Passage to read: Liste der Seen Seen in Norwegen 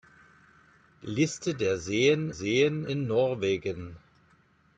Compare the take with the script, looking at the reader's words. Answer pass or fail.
pass